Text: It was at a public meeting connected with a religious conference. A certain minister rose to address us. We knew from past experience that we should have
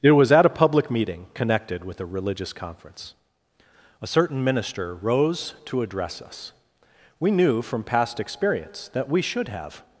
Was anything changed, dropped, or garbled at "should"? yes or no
no